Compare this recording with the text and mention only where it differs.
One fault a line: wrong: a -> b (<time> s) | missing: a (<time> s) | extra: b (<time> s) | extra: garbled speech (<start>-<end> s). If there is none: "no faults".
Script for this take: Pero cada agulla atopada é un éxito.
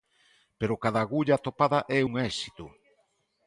no faults